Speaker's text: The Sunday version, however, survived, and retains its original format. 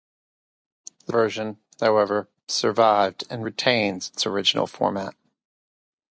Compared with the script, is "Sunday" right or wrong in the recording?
wrong